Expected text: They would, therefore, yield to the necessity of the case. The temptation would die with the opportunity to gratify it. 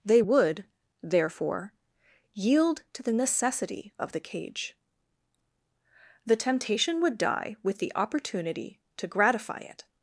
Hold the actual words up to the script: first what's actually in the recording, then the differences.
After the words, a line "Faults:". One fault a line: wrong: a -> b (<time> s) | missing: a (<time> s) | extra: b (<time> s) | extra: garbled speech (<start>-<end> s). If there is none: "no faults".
They would, therefore, yield to the necessity of the cage. The temptation would die with the opportunity to gratify it.
Faults:
wrong: case -> cage (4.2 s)